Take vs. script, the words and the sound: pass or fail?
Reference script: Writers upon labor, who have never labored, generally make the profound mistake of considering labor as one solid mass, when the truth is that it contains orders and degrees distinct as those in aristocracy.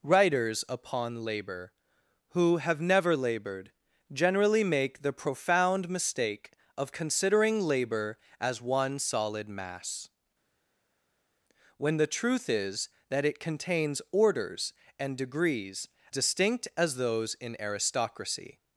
pass